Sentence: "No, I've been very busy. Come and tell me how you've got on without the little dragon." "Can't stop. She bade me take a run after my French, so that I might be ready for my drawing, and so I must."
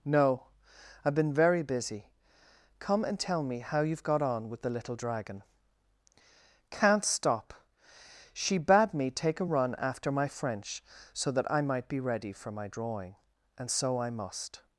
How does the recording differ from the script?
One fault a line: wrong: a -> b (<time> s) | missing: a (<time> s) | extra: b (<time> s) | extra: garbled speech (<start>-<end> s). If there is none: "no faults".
wrong: without -> with (4.5 s)